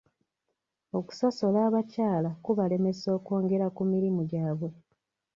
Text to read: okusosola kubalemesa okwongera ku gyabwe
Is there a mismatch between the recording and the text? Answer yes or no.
yes